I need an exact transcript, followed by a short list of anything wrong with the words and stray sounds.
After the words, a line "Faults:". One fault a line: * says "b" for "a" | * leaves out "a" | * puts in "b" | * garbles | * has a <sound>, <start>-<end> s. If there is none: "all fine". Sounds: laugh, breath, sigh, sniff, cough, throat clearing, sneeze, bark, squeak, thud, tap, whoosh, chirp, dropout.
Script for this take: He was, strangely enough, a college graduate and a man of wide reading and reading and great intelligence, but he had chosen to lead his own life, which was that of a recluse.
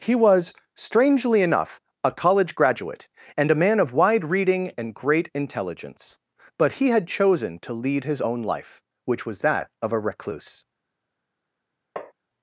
He was, strangely enough, a college graduate and a man of wide reading and great intelligence, but he had chosen to lead his own life, which was that of a recluse.
Faults:
* leaves out "reading and"
* has a tap, 12.0-12.1 s